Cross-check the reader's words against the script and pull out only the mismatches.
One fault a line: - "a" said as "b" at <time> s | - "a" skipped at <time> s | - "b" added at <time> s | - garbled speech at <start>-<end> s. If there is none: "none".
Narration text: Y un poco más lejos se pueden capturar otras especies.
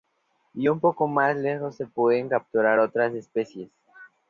none